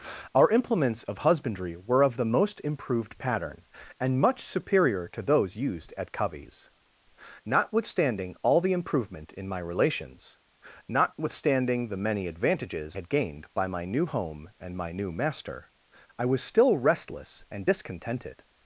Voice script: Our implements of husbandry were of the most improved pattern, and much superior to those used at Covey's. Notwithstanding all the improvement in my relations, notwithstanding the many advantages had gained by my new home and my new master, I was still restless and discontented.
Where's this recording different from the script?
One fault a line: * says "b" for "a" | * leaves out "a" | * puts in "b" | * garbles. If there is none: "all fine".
all fine